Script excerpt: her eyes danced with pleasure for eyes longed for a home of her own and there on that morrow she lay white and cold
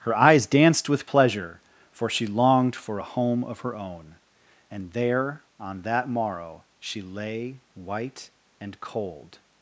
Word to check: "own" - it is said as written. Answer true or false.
true